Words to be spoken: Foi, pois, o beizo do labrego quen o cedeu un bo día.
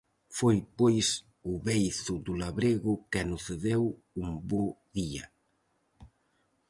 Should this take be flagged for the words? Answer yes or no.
no